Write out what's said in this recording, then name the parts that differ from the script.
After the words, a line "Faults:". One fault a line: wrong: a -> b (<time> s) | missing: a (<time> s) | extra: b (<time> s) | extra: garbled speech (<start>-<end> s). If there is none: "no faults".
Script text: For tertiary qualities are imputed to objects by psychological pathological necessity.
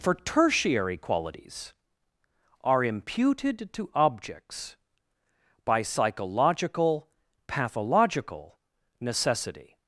For tertiary qualities are imputed to objects by psychological pathological necessity.
Faults:
no faults